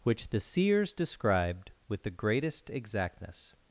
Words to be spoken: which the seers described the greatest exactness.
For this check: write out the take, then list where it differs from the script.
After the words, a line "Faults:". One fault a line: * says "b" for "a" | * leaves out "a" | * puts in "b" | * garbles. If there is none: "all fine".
which the seers described with the greatest exactness.
Faults:
* puts in "with"